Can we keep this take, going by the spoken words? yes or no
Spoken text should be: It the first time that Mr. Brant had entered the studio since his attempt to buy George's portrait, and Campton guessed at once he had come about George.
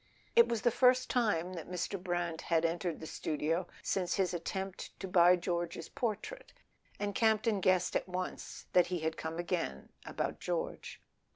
no